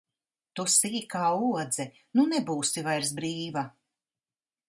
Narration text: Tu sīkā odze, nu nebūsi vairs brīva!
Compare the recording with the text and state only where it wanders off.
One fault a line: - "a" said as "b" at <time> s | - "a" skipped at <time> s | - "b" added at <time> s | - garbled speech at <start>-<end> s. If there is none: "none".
none